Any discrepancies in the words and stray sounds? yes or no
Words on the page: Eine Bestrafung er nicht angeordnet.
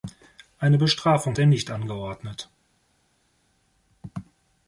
no